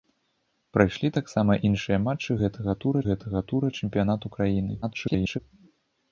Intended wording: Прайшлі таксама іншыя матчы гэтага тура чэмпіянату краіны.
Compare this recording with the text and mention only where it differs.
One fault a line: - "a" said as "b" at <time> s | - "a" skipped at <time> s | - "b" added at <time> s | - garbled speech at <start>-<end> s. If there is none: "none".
- "гэтага тура" added at 3.1 s
- garbled speech at 4.8-5.4 s